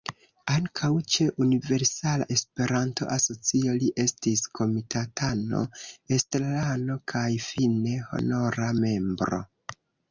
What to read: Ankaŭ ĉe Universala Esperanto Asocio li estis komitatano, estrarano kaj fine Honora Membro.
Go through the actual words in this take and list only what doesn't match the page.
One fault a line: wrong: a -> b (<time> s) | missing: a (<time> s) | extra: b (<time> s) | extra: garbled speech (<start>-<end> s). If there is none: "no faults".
no faults